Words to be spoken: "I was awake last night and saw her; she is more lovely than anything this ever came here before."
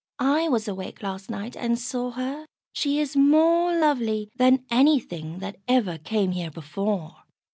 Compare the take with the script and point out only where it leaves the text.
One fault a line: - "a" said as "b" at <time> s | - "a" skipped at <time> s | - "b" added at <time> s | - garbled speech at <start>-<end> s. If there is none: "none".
- "this" said as "that" at 5.4 s